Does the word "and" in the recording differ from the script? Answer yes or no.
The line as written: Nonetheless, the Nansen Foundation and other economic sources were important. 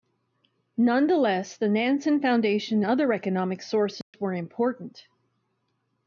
yes